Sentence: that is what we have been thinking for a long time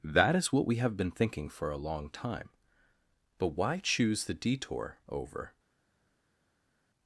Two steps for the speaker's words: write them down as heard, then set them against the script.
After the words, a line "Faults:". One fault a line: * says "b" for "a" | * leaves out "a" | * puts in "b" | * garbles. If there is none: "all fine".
that is what we have been thinking for a long time but why choose the detour over
Faults:
* puts in "but why choose the detour over"